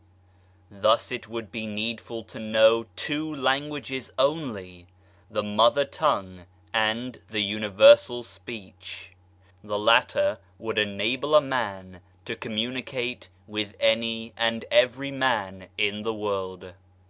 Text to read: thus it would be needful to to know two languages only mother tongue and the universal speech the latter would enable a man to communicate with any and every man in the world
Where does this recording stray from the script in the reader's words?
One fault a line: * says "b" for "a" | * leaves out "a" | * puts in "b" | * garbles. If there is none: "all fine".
* leaves out "to"
* puts in "the"